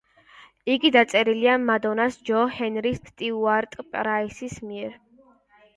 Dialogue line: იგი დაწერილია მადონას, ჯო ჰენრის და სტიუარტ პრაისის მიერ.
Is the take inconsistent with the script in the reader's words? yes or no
yes